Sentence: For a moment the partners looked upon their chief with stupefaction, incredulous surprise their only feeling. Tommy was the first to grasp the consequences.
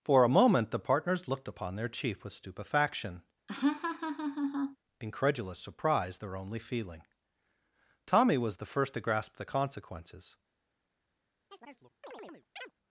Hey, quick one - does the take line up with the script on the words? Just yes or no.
yes